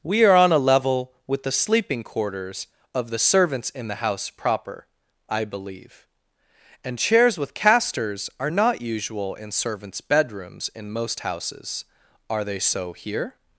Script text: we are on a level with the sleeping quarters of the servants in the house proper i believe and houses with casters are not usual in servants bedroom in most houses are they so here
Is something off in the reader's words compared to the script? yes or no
yes